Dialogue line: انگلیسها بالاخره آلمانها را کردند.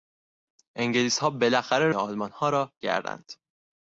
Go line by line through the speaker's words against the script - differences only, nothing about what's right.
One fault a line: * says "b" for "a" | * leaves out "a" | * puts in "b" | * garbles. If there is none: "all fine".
all fine